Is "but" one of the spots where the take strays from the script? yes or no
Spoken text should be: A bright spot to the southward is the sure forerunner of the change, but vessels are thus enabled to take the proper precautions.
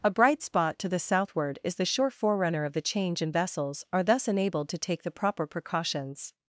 yes